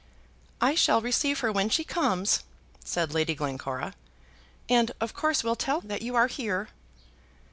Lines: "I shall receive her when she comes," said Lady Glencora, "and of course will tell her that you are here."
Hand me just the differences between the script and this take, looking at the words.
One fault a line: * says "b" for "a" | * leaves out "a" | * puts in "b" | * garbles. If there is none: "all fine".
* leaves out "her"